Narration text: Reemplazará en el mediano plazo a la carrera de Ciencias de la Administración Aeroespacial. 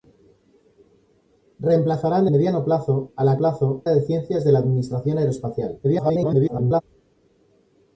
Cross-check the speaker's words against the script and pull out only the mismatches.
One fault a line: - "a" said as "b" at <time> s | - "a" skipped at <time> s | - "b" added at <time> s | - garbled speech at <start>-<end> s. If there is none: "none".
- "el" skipped at 2.3 s
- "carrera" said as "plazo" at 3.4 s
- garbled speech at 5.8-6.8 s